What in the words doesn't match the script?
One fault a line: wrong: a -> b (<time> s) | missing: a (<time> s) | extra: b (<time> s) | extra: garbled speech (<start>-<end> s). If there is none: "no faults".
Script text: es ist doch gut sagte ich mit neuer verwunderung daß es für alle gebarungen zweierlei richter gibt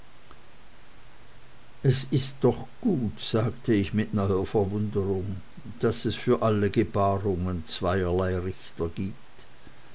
no faults